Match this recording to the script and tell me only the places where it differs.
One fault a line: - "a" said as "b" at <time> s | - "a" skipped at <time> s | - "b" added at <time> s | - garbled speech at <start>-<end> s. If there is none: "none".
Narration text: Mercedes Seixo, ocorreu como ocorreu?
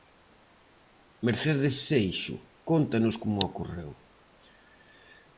- "ocorreu" said as "cóntanos" at 2.6 s